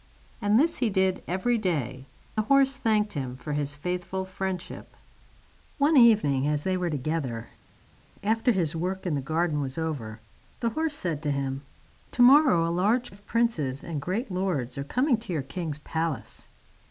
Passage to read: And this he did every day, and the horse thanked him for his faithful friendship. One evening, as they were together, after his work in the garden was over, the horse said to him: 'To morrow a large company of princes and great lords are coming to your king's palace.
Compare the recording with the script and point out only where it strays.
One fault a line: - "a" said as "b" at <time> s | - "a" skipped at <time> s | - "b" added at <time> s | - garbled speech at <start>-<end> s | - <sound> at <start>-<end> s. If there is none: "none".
- "and" skipped at 2.1 s
- "company" skipped at 13.1 s